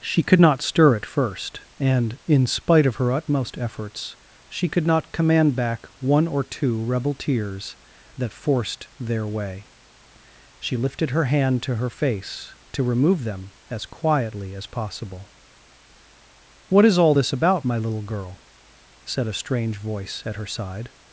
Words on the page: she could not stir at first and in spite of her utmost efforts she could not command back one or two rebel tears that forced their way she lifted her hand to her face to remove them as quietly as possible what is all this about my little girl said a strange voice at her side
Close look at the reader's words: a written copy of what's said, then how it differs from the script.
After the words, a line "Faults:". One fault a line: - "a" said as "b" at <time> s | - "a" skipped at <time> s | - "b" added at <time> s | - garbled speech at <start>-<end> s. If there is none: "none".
she could not stir at first and in spite of her utmost efforts she could not command back one or two rebel tears that forced their way she lifted her hand to her face to remove them as quietly as possible what is all this about my little girl said a strange voice at her side
Faults:
none